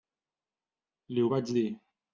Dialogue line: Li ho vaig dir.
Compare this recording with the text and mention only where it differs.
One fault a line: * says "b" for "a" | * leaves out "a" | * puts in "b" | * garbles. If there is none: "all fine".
all fine